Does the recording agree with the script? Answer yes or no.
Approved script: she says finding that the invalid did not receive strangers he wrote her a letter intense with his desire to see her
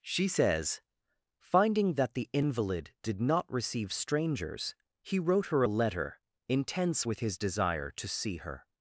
yes